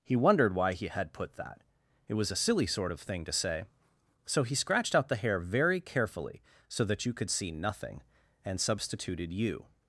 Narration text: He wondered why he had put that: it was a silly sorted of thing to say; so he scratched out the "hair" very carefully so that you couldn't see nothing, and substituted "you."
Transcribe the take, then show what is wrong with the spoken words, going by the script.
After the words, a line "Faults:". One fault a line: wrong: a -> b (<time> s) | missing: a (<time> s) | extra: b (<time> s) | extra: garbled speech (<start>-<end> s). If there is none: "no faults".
He wondered why he had put that: it was a silly sort of thing to say; so he scratched out the "hair" very carefully so that you could see nothing, and substituted "you."
Faults:
wrong: sorted -> sort (2.6 s)
wrong: couldn't -> could (7.1 s)